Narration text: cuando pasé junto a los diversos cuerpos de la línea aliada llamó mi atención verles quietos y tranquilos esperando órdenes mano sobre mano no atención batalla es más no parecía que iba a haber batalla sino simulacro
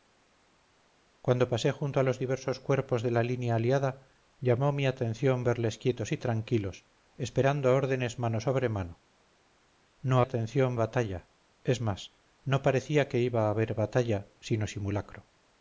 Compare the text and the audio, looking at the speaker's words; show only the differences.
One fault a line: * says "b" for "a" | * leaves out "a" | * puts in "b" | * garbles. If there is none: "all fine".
all fine